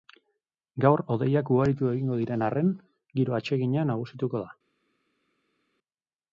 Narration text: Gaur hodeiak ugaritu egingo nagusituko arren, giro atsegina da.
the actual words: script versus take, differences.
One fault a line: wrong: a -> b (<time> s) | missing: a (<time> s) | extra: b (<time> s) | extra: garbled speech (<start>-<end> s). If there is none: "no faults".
wrong: nagusituko -> diren (2.2 s)
extra: nagusituko (4.0 s)